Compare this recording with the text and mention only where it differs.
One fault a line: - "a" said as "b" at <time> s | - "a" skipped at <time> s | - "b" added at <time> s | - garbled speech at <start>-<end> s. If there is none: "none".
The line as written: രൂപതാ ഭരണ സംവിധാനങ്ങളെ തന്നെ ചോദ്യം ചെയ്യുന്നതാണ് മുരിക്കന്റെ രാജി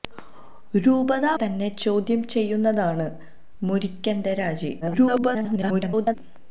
- "ഭരണ സംവിധാനങ്ങളെ" skipped at 1.3 s
- garbled speech at 4.8-6.2 s